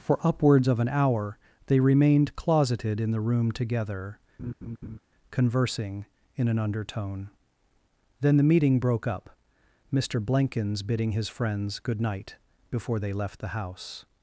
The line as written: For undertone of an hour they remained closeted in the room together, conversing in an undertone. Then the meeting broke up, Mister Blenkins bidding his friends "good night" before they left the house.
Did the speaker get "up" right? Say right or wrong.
right